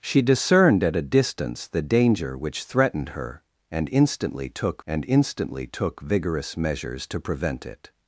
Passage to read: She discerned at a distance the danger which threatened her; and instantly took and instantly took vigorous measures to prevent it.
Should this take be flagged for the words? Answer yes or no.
no